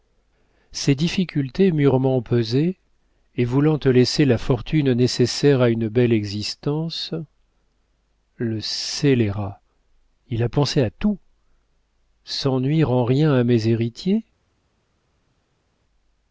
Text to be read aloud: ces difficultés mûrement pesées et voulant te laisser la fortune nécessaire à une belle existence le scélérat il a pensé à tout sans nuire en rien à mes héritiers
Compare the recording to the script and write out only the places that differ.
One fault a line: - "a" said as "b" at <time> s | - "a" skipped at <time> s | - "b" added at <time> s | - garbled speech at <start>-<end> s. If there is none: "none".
none